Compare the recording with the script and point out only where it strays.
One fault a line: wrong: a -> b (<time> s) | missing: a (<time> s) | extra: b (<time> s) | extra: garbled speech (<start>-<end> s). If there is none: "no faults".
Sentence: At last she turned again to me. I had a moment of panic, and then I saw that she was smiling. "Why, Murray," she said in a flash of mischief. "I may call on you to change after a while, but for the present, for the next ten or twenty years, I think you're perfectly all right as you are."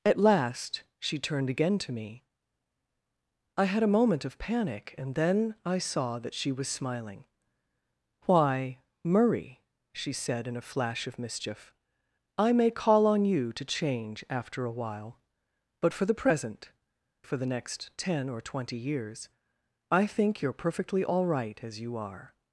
no faults